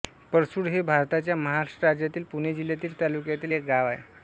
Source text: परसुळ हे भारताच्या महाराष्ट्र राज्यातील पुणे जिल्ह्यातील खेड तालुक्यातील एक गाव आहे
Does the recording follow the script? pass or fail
fail